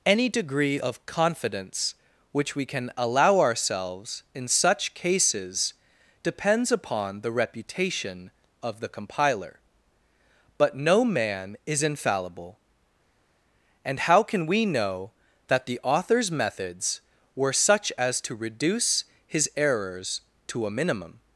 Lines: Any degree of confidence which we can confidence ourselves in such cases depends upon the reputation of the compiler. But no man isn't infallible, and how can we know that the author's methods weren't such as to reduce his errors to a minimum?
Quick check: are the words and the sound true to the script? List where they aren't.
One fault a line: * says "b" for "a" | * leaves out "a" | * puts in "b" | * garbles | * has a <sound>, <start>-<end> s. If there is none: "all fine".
* says "allow" for "confidence"
* says "is" for "isn't"
* says "were" for "weren't"